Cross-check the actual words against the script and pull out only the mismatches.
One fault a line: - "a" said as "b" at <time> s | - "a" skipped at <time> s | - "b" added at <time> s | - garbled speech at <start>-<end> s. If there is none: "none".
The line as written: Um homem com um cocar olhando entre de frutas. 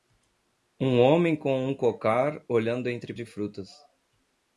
none